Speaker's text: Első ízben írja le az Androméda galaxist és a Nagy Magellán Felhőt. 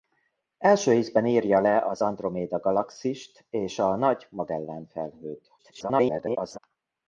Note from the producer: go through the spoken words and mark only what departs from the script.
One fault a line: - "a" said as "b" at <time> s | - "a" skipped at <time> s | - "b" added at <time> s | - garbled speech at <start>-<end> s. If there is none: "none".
- garbled speech at 5.6-6.6 s